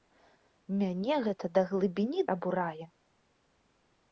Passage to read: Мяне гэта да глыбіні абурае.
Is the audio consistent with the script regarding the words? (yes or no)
yes